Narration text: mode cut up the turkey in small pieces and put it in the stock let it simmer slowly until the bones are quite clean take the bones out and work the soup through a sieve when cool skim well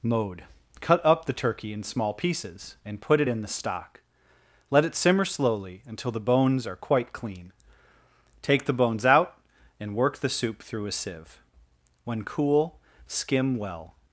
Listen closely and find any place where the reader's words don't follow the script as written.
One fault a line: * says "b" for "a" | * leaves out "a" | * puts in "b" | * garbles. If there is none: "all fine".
all fine